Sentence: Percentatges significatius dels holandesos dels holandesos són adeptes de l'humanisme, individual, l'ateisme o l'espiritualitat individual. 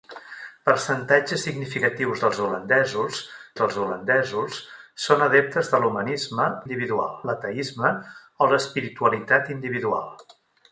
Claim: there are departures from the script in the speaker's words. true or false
false